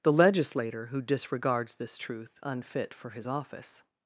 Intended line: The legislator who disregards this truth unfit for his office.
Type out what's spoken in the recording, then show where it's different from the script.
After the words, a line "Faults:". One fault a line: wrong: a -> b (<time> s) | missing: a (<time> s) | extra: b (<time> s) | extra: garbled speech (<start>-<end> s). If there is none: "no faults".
The legislator who disregards this truth unfit for his office.
Faults:
no faults